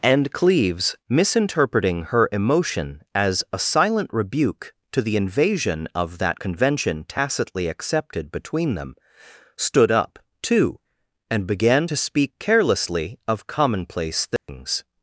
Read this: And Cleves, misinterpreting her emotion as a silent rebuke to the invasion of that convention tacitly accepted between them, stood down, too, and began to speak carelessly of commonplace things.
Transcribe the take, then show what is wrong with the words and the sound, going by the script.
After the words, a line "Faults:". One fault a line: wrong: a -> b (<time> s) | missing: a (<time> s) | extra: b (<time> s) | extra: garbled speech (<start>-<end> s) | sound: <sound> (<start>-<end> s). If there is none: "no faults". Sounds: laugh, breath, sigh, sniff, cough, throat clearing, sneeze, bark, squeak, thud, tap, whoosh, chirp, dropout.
And Cleves, misinterpreting her emotion as a silent rebuke to the invasion of that convention tacitly accepted between them, stood up, too, and began to speak carelessly of commonplace things.
Faults:
wrong: down -> up (9.9 s)
sound: dropout (14.4-14.5 s)